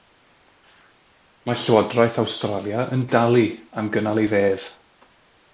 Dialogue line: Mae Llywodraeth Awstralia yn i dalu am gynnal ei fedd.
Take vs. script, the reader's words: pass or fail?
pass